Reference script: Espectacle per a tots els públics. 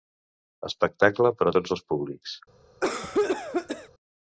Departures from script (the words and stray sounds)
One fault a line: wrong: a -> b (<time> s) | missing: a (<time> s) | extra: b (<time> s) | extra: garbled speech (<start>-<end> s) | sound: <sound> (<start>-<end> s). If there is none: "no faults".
sound: cough (2.8-3.9 s)